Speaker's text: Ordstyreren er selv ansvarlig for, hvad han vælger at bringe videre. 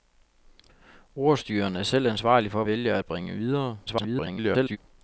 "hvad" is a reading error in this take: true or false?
true